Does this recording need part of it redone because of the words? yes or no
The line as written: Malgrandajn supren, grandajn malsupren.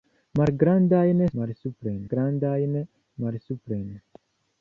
yes